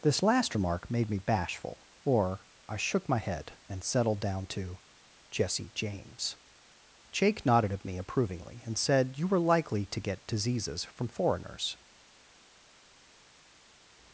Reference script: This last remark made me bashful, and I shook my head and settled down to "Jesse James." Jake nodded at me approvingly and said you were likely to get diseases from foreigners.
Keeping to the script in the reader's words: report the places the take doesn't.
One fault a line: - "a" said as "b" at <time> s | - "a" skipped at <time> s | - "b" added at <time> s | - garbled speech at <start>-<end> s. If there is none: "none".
- "and" said as "or" at 2.1 s